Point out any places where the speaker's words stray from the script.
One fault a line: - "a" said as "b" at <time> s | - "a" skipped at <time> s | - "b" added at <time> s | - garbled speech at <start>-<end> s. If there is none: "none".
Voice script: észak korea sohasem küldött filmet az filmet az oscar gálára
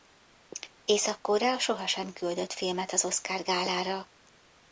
- "filmet az" skipped at 3.0 s